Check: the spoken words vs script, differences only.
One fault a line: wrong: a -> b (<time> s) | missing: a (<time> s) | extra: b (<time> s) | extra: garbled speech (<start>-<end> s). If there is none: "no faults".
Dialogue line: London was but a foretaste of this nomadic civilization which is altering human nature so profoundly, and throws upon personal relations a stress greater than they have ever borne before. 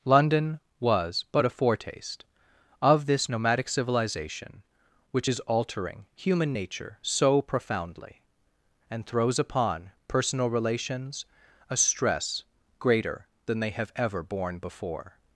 no faults